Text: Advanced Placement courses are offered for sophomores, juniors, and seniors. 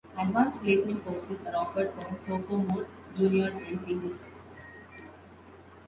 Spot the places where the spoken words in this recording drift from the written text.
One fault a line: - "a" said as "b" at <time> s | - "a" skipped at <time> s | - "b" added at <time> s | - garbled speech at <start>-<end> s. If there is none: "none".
none